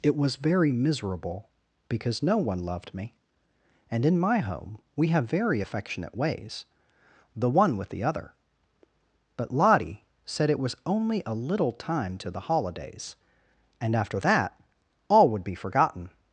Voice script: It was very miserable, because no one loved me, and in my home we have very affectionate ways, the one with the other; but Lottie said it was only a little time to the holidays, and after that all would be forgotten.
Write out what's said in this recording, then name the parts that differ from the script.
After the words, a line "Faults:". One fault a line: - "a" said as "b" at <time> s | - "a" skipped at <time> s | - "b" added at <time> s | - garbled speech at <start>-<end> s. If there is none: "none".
It was very miserable, because no one loved me, and in my home we have very affectionate ways, the one with the other; but Lottie said it was only a little time to the holidays, and after that all would be forgotten.
Faults:
none